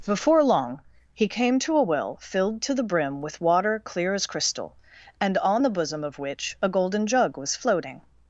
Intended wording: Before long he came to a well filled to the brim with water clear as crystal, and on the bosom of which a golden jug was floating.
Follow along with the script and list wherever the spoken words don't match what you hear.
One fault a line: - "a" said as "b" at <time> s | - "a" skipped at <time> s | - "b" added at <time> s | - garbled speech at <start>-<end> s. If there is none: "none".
none